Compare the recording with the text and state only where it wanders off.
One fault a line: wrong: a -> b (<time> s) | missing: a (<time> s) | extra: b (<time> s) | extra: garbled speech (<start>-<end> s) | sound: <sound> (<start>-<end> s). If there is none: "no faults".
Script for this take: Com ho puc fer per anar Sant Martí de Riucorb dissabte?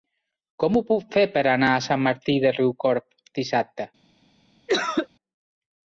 extra: a (1.7 s)
sound: cough (4.7-5.1 s)